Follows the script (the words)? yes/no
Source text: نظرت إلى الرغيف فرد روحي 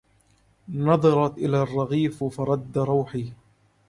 yes